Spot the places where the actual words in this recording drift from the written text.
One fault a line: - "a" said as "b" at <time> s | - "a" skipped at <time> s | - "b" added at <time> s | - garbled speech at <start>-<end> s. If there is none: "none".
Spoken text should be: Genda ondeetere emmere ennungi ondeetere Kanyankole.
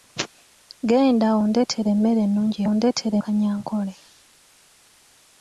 none